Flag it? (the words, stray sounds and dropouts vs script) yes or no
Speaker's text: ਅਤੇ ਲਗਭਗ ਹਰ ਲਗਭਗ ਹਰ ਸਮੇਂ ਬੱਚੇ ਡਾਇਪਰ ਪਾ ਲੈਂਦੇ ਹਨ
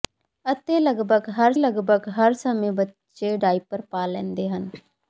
no